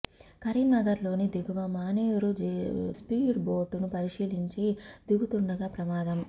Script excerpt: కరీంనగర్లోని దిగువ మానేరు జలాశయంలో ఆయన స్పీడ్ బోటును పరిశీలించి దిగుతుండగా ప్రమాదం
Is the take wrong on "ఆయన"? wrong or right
wrong